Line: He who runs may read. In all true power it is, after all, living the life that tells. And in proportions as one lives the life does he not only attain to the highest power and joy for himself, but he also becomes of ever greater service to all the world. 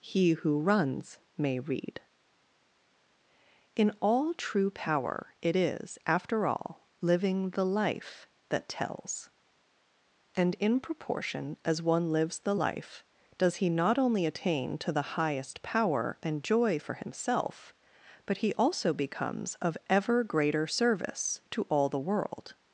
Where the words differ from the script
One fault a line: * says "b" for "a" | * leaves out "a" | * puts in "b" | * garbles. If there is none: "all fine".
* says "proportion" for "proportions"